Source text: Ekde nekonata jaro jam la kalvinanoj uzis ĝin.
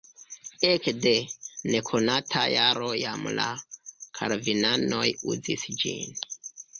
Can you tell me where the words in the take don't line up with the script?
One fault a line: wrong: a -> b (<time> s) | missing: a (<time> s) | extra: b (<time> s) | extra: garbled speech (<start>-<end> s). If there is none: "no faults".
no faults